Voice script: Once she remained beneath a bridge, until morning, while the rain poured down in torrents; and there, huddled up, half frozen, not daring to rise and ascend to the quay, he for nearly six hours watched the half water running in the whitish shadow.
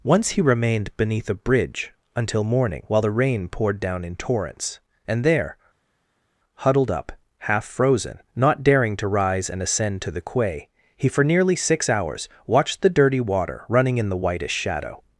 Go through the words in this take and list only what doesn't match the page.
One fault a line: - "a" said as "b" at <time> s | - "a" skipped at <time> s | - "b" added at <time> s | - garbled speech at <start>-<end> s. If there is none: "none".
- "she" said as "he" at 0.3 s
- "half" said as "dirty" at 12.9 s